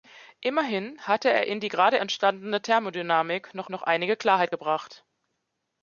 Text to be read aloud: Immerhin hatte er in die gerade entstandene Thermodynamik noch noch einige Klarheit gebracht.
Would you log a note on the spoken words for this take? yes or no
no